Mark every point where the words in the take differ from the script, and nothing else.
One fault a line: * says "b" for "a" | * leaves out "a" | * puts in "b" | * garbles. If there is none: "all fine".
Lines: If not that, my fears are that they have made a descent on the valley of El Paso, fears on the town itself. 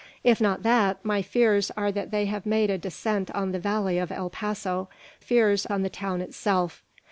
all fine